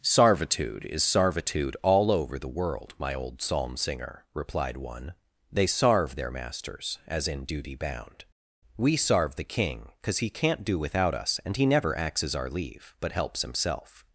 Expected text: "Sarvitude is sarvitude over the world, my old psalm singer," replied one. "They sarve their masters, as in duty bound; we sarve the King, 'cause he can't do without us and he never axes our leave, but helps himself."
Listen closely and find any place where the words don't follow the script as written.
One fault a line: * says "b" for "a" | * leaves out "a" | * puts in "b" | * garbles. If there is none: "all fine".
* puts in "all"